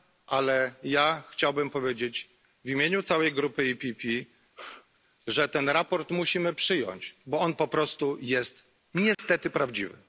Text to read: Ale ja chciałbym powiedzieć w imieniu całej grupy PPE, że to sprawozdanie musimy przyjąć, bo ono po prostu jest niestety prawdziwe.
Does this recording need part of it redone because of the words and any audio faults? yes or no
yes